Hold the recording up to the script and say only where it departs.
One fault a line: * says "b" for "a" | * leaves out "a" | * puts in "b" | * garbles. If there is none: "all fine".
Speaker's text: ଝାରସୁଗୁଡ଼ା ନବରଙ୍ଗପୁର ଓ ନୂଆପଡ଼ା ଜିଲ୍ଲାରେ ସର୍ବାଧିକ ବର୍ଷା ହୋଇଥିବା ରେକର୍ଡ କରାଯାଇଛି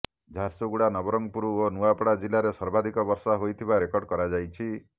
all fine